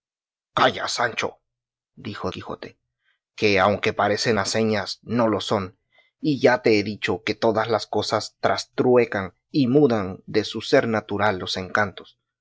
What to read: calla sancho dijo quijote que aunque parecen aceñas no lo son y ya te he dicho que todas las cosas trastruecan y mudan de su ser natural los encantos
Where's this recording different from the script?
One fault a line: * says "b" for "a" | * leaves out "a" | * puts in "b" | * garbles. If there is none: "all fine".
all fine